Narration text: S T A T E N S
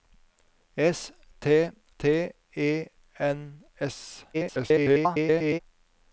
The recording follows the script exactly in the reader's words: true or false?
false